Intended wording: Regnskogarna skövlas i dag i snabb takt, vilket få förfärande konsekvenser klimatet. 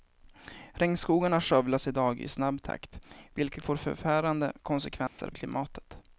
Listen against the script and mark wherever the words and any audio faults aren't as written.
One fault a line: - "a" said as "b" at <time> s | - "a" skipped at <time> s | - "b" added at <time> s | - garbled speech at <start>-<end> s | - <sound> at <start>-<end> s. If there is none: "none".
- dropout at 5.1-5.2 s